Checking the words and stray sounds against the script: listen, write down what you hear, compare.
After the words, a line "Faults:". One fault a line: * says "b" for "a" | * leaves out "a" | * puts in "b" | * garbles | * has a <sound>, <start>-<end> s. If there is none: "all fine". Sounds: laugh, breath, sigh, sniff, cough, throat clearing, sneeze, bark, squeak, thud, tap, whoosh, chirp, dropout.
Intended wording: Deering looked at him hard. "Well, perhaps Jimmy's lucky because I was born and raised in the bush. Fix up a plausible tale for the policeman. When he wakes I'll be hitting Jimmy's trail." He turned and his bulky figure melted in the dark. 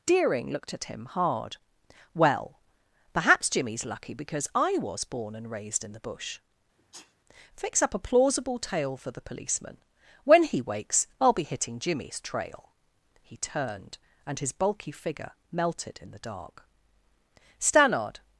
Deering looked at him hard. "Well, perhaps Jimmy's lucky because I was born and raised in the bush. Fix up a plausible tale for the policeman. When he wakes I'll be hitting Jimmy's trail." He turned and his bulky figure melted in the dark. Stannard
Faults:
* has a sneeze, 6.8-7.2 s
* puts in "Stannard"